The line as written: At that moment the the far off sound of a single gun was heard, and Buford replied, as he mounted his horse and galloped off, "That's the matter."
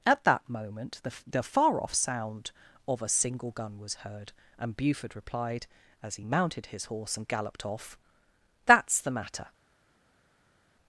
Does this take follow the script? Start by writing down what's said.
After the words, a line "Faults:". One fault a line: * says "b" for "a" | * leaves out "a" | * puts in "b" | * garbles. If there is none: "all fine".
At that moment the the far off sound of a single gun was heard, and Buford replied, as he mounted his horse and galloped off, "That's the matter."
Faults:
all fine